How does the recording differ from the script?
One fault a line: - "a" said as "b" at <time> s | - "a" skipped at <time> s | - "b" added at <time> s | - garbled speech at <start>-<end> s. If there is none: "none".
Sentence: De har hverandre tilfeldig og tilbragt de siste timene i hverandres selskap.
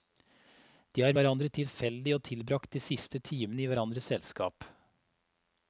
none